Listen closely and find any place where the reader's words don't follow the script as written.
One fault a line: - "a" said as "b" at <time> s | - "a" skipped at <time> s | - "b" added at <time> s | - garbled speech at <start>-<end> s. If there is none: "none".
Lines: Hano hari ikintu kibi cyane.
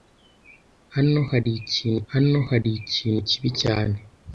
- "hano hari ikintu" added at 2.1 s